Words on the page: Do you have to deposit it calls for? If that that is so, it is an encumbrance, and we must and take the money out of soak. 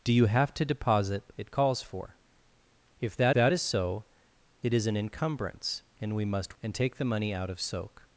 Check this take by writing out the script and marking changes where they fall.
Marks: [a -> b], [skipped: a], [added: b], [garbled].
Do you have to deposit it calls for? If that that is so, it is an encumbrance, and we must and take the money out of soak.